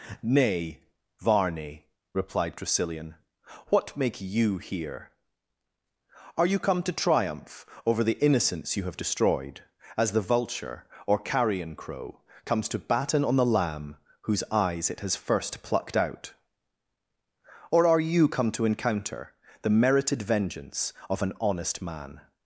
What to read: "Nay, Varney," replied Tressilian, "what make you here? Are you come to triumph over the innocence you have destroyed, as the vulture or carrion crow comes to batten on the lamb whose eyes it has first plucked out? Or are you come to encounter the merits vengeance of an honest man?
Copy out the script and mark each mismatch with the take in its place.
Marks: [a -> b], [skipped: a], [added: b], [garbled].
"Nay, Varney," replied Tressilian, "what make you here? Are you come to triumph over the innocence you have destroyed, as the vulture or carrion crow comes to batten on the lamb whose eyes it has first plucked out? Or are you come to encounter the [merits -> merited] vengeance of an honest man?